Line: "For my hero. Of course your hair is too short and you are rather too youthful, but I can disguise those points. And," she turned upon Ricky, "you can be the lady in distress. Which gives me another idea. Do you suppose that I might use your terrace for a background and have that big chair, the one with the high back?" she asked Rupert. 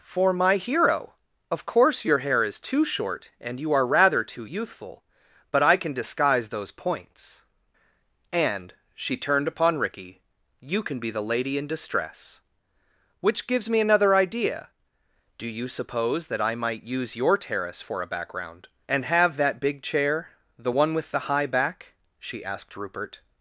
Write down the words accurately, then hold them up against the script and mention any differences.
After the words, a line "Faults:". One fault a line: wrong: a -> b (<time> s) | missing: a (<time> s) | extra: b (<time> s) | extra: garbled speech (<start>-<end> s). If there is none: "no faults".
"For my hero. Of course your hair is too short and you are rather too youthful, but I can disguise those points. And," she turned upon Ricky, "you can be the lady in distress. Which gives me another idea. Do you suppose that I might use your terrace for a background and have that big chair, the one with the high back?" she asked Rupert.
Faults:
no faults